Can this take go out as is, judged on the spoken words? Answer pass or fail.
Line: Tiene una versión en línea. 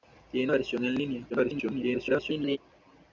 fail